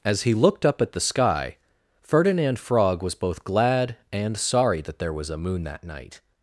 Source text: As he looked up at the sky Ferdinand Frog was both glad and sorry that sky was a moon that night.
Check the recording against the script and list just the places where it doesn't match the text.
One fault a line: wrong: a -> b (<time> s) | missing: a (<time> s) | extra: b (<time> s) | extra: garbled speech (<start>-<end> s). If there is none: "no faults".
wrong: sky -> there (5.0 s)